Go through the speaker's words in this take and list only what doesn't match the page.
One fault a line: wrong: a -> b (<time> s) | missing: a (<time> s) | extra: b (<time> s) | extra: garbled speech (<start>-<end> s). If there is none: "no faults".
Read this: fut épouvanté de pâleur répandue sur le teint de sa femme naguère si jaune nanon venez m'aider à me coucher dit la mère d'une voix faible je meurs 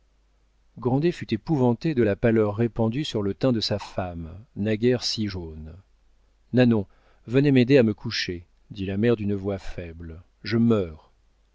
extra: la (2.0 s)